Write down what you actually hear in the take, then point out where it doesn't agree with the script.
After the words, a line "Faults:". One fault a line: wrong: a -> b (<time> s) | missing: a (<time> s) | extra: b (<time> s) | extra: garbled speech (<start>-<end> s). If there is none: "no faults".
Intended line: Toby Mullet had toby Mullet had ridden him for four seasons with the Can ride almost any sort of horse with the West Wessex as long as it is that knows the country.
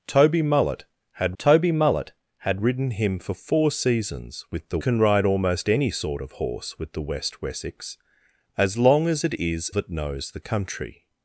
Toby Mullet had toby Mullet had ridden him for four seasons with the Can ride almost any sort of horse with the West Wessex as long as it is that knows the country.
Faults:
no faults